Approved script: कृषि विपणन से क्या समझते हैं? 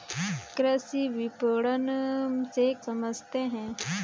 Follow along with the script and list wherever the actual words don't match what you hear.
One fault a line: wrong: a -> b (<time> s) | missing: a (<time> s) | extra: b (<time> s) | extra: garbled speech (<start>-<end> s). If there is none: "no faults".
missing: क्या (2.7 s)